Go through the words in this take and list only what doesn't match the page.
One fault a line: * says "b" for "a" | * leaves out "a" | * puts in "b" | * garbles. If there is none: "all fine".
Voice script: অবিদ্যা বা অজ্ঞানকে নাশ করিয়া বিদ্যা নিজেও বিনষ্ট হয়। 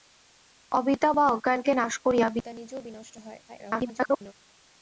* garbles